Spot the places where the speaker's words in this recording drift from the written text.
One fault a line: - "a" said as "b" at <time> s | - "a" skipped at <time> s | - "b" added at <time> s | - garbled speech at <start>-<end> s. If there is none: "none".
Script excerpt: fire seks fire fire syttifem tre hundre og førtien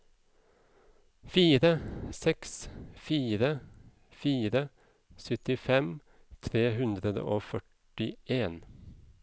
none